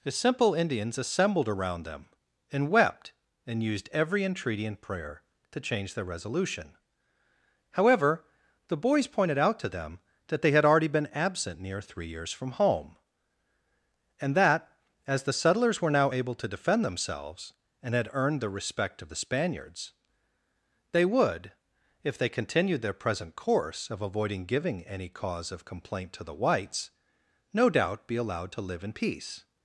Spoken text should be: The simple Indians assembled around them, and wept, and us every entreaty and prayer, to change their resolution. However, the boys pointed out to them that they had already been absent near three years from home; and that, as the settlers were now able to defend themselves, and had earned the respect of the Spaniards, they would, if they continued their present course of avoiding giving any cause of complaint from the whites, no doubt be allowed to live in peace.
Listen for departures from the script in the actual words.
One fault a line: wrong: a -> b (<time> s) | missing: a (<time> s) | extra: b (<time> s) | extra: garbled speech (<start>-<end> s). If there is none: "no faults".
wrong: us -> used (3.6 s)
wrong: from -> to (26.1 s)